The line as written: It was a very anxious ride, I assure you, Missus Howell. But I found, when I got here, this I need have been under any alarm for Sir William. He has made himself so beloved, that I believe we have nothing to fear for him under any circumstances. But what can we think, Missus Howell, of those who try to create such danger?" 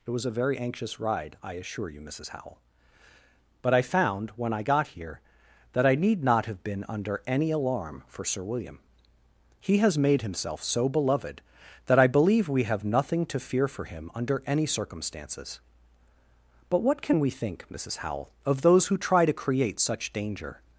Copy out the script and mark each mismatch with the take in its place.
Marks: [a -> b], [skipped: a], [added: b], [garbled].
It was a very anxious ride, I assure you, Missus Howell. But I found, when I got here, [this -> that] I need [added: not] have been under any alarm for Sir William. He has made himself so beloved, that I believe we have nothing to fear for him under any circumstances. But what can we think, Missus Howell, of those who try to create such danger?"